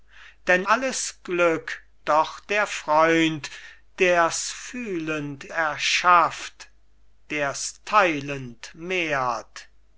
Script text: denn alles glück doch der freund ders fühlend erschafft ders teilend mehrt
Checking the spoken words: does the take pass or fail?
pass